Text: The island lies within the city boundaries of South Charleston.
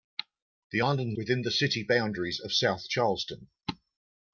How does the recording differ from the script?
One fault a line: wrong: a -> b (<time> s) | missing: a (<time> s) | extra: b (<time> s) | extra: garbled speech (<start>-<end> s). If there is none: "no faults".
missing: lies (1.2 s)